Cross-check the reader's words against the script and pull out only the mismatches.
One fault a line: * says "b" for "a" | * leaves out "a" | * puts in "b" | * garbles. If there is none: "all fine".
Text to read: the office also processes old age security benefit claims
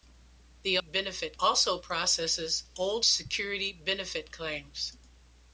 * says "benefit" for "office"
* leaves out "age"